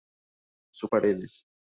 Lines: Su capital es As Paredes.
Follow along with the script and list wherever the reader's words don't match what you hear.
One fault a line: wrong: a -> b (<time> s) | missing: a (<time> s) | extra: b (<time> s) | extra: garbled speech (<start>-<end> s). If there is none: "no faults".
missing: capital es As (0.9 s)